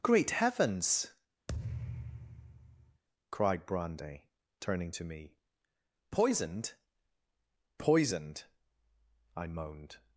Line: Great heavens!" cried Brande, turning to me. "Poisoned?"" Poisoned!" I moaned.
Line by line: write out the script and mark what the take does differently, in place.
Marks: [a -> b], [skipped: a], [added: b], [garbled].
Great heavens!" cried Brande, turning to me. "Poisoned?"" Poisoned!" I moaned.